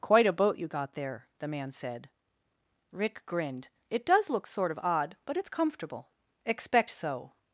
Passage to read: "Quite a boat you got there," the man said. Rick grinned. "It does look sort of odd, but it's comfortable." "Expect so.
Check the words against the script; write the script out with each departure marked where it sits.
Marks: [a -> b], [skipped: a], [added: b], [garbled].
"Quite a boat you got there," the man said. Rick grinned. "It does look sort of odd, but it's comfortable." "Expect so.